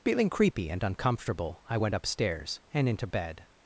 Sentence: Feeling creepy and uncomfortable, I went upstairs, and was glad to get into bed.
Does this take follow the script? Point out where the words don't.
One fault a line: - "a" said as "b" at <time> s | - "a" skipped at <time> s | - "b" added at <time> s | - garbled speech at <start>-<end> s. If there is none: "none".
- "was glad to get" skipped at 2.9 s